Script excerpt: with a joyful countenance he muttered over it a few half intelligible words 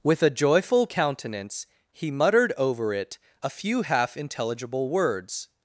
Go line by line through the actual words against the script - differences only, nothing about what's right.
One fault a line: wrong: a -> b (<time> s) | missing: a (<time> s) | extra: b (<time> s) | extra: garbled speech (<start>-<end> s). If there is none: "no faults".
no faults